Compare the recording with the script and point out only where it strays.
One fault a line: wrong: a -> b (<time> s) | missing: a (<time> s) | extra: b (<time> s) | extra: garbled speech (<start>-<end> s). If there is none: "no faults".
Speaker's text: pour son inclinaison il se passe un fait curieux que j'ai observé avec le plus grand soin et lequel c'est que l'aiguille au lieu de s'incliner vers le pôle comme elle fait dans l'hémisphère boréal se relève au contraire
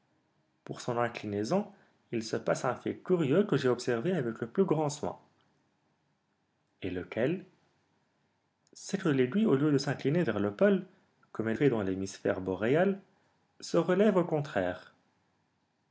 no faults